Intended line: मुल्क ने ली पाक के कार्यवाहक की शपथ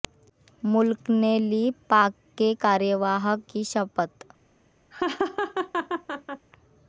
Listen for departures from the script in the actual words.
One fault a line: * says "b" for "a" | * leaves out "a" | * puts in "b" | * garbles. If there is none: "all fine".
all fine